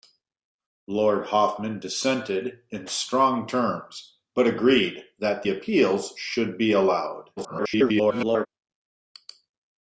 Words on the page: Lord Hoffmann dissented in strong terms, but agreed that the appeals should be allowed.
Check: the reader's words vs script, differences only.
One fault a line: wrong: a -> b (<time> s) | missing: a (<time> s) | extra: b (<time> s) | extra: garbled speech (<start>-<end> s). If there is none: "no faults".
missing: the (5.4 s)
extra: garbled speech (7.4-8.5 s)